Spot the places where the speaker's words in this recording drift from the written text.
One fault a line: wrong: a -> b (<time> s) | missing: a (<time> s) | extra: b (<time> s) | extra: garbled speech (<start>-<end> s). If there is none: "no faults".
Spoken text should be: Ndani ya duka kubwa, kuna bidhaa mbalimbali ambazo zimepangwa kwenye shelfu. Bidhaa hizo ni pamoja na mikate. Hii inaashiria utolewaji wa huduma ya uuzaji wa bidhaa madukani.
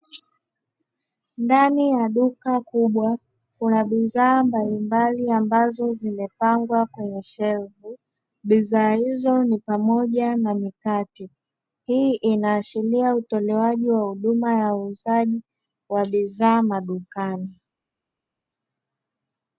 no faults